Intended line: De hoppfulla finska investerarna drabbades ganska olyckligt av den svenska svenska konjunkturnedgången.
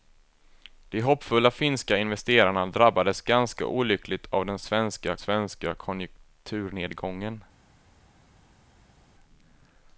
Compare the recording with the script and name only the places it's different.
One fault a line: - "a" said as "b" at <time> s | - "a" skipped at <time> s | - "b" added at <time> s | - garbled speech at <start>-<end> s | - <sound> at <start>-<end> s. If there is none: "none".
none